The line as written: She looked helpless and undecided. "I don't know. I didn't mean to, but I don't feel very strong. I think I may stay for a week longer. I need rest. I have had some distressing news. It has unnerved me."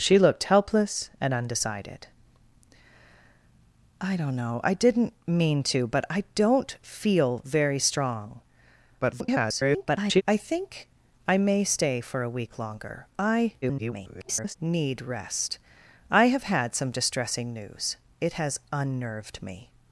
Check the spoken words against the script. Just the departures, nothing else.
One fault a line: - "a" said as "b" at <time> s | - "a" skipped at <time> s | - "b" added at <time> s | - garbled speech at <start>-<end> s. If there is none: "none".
- garbled speech at 9.0-10.2 s
- garbled speech at 13.6-14.6 s